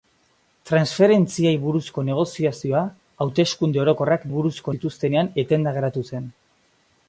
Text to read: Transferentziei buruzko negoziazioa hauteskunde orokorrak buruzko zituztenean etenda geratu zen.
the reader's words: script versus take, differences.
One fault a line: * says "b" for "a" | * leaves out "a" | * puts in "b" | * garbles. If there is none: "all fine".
all fine